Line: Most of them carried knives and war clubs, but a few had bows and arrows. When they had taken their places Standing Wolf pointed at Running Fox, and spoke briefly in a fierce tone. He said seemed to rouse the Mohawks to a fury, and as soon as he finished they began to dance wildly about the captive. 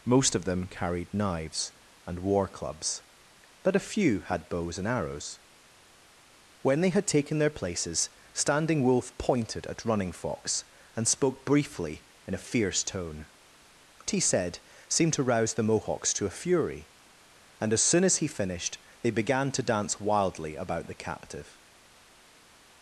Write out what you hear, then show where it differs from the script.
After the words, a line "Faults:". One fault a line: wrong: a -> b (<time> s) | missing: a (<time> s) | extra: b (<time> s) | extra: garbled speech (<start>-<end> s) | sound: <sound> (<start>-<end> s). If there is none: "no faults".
Most of them carried knives and war clubs, but a few had bows and arrows. When they had taken their places Standing Wolf pointed at Running Fox, and spoke briefly in a fierce tone. He said seemed to rouse the Mohawks to a fury, and as soon as he finished they began to dance wildly about the captive.
Faults:
no faults